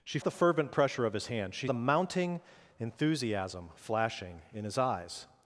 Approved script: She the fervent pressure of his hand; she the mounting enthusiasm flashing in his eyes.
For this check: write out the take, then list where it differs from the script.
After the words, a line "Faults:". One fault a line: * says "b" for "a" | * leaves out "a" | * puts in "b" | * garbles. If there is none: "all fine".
She the fervent pressure of his hand; she the mounting enthusiasm flashing in his eyes.
Faults:
all fine